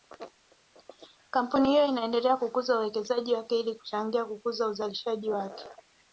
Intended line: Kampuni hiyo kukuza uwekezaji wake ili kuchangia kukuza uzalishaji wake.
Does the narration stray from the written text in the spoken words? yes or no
yes